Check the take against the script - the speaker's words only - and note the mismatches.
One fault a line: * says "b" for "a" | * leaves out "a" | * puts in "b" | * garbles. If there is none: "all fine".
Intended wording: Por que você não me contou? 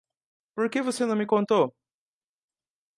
all fine